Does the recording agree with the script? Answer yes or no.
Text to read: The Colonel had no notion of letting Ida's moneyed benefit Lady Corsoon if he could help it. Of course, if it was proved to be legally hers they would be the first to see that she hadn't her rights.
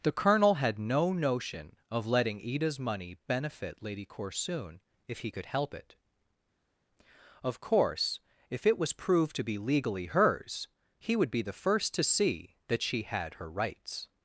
no